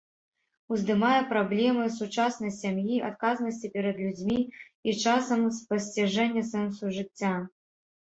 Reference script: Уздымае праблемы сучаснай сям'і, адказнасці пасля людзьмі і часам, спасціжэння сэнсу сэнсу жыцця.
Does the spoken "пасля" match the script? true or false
false